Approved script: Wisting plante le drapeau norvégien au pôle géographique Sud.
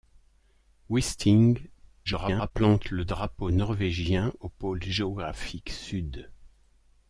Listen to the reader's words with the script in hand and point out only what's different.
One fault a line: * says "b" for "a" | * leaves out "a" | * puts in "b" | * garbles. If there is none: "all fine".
* garbles